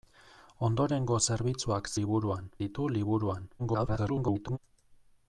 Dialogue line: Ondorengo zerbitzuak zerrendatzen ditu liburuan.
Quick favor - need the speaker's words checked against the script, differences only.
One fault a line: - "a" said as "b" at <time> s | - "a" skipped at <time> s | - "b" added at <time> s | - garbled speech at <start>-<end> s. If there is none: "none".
- "zerrendatzen" said as "liburuan" at 2.0 s
- garbled speech at 3.6-4.6 s